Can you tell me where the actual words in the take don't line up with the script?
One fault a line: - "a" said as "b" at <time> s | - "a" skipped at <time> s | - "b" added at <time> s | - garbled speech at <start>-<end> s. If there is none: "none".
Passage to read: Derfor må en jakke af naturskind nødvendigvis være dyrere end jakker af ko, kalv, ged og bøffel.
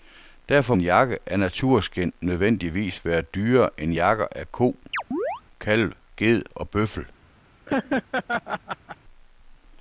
- "må" skipped at 0.8 s